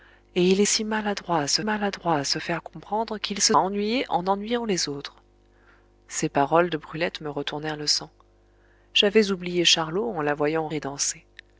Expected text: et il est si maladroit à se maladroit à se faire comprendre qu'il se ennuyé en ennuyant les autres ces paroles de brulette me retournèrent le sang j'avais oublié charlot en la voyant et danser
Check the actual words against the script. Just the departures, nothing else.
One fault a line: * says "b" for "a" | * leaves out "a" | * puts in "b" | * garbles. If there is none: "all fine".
all fine